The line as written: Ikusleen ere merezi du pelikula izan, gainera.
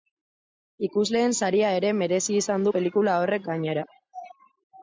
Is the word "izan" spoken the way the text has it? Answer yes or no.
no